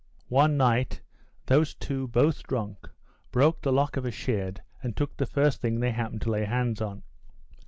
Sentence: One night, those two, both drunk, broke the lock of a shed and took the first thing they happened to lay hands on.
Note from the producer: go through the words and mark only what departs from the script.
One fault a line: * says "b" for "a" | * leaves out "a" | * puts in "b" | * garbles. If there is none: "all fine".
all fine